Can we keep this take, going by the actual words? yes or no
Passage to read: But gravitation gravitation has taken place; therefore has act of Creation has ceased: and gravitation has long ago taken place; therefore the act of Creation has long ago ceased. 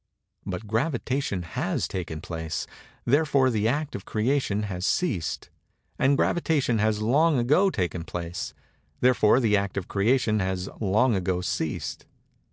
no